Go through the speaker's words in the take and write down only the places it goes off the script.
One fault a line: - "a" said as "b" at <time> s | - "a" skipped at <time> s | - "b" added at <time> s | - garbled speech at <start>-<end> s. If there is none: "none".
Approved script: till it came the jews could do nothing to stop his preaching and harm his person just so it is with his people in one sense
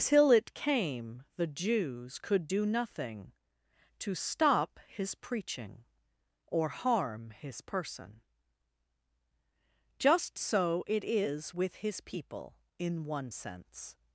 - "and" said as "or" at 6.5 s